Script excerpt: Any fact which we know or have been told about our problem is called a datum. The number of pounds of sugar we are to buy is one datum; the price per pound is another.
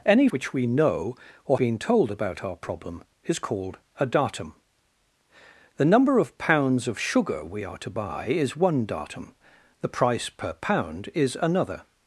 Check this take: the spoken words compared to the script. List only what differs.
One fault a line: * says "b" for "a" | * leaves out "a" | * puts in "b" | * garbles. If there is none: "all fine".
* leaves out "fact"
* leaves out "have"